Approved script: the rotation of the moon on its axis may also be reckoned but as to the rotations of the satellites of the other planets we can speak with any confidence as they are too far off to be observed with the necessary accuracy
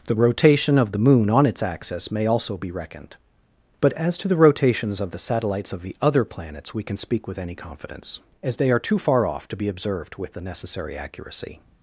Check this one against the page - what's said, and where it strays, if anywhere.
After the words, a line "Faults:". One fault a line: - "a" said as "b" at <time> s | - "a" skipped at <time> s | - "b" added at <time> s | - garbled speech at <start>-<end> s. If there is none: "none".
the rotation of the moon on its axis may also be reckoned but as to the rotations of the satellites of the other planets we can speak with any confidence as they are too far off to be observed with the necessary accuracy
Faults:
none